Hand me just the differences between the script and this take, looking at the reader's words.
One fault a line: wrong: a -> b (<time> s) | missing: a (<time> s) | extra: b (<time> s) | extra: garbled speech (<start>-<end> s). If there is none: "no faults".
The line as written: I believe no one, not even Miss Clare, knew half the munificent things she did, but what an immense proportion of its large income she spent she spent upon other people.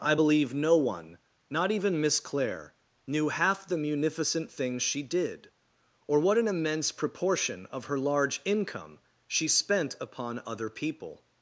wrong: but -> or (6.1 s)
wrong: its -> her (7.9 s)
missing: she spent (10.0 s)